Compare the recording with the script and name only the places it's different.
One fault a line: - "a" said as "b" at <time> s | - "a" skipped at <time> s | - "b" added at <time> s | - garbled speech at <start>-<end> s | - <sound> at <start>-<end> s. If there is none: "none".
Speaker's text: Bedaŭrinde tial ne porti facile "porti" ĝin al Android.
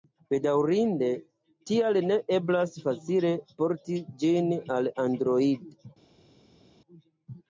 - "porti" said as "eblas" at 2.4 s